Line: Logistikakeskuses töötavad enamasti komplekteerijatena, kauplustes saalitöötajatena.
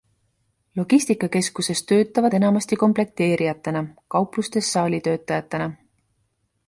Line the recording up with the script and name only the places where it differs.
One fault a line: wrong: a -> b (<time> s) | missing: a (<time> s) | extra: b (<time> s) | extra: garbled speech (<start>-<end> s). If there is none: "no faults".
no faults